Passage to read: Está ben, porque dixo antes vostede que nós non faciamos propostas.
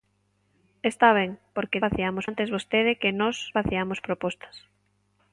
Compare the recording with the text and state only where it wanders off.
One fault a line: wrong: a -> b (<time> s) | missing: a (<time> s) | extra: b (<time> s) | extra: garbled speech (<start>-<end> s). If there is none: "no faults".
wrong: dixo -> faciamos (1.8 s)
missing: non (3.4 s)